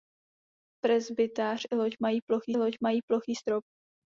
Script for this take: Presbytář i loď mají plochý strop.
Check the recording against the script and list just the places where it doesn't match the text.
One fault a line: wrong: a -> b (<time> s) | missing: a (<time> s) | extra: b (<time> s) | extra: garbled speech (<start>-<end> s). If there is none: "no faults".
extra: loď mají plochý (2.6 s)